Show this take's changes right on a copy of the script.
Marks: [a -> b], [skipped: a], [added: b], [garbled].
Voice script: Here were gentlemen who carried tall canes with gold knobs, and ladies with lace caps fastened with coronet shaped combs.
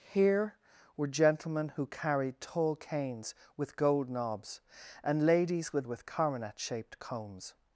Here were gentlemen who carried tall canes with gold knobs, and ladies with [skipped: lace caps fastened] with coronet shaped combs.